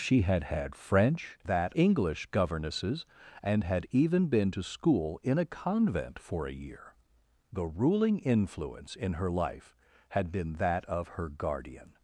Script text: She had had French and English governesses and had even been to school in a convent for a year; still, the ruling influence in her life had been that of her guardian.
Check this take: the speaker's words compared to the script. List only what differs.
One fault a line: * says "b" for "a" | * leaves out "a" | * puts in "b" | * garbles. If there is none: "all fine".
* says "that" for "and"
* leaves out "still"